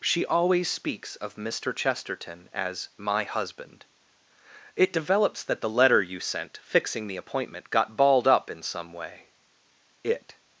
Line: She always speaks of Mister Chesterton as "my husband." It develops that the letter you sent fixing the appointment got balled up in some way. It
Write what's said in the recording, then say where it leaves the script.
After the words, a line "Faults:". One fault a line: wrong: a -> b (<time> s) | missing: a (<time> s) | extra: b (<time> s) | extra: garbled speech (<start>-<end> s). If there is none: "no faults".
She always speaks of Mister Chesterton as "my husband." It develops that the letter you sent fixing the appointment got balled up in some way. It
Faults:
no faults